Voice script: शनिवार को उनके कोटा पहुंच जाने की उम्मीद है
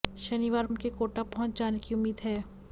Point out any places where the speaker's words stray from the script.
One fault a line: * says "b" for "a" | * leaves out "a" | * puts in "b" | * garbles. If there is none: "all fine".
* leaves out "को"